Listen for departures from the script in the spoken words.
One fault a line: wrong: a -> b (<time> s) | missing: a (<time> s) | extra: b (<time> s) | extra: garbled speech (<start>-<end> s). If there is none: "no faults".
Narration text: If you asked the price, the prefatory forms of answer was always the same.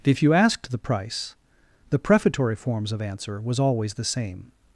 no faults